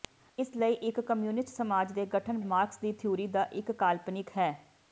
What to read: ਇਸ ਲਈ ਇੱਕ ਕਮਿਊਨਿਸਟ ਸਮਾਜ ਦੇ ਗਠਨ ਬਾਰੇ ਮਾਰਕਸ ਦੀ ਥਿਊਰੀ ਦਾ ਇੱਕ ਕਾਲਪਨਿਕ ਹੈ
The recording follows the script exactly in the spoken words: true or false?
false